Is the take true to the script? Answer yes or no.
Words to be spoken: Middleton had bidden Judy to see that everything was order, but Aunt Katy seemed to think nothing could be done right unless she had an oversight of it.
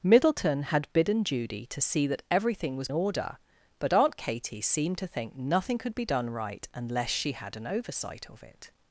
yes